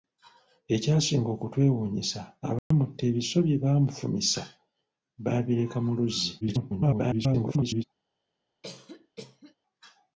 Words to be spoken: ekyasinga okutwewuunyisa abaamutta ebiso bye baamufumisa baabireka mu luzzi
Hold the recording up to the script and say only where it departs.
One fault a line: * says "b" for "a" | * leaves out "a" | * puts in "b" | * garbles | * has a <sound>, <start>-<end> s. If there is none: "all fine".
* has a dropout, 2.6-2.7 s
* garbles
* has a cough, 8.6-9.5 s